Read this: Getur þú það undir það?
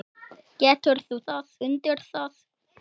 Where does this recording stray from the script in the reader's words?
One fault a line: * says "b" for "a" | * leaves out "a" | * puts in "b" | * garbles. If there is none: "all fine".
all fine